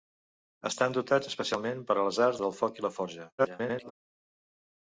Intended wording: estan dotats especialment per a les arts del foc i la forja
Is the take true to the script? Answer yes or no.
no